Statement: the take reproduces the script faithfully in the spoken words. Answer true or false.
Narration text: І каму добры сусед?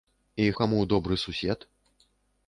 true